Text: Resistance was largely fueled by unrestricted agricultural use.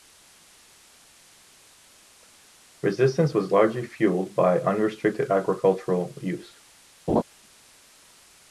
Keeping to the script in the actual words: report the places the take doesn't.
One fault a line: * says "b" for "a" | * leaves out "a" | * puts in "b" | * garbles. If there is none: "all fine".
all fine